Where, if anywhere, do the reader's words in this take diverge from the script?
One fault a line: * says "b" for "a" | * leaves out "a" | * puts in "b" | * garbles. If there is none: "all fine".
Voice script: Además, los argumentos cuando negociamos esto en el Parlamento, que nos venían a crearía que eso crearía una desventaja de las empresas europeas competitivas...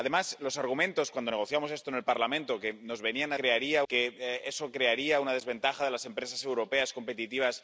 all fine